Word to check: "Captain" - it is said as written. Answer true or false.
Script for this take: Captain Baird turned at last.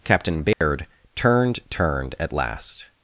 true